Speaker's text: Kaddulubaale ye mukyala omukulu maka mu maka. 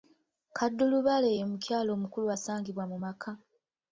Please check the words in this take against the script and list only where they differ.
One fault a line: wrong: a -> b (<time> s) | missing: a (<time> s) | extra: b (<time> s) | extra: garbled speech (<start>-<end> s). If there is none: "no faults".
wrong: maka -> asangibwa (2.3 s)